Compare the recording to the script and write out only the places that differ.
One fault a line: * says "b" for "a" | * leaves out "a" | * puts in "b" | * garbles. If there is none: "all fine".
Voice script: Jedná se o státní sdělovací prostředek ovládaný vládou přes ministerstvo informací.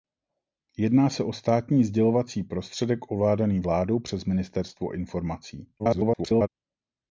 * garbles